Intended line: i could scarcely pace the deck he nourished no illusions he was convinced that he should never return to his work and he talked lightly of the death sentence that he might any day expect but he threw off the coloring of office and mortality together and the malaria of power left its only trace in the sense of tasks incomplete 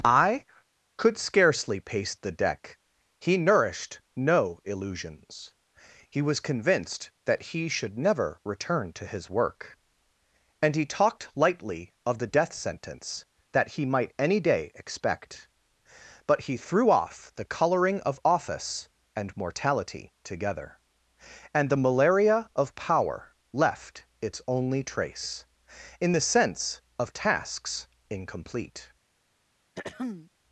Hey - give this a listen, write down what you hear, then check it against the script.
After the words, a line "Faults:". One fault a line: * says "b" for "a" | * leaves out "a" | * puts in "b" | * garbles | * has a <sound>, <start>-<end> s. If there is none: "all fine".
i could scarcely pace the deck he nourished no illusions he was convinced that he should never return to his work and he talked lightly of the death sentence that he might any day expect but he threw off the coloring of office and mortality together and the malaria of power left its only trace in the sense of tasks incomplete
Faults:
* has a throat clearing, 29.8-30.3 s